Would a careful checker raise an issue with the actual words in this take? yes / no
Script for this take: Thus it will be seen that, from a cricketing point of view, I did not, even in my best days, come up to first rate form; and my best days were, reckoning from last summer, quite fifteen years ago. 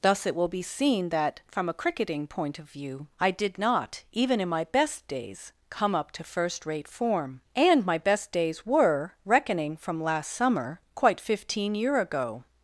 yes